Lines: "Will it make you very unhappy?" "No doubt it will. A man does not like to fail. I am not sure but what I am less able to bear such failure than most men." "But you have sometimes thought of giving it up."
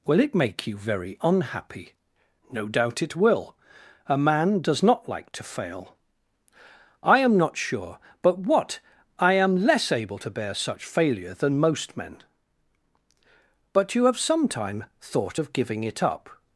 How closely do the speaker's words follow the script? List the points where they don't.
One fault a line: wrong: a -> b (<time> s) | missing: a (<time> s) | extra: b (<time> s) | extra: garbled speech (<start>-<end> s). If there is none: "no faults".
wrong: sometimes -> sometime (14.2 s)